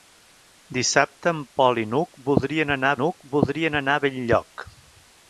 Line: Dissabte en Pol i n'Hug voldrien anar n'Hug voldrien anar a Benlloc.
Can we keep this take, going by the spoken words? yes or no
yes